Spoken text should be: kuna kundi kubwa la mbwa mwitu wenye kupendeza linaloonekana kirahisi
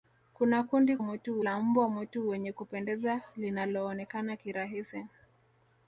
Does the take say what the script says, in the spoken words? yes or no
no